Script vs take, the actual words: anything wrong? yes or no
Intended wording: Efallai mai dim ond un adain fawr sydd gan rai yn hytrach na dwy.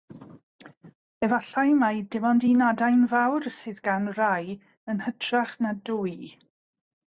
no